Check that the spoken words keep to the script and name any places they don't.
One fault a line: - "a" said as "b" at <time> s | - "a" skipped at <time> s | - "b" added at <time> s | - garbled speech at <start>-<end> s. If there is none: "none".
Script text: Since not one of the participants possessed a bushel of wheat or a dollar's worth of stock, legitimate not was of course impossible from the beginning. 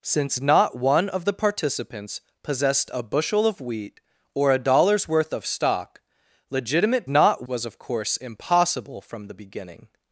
none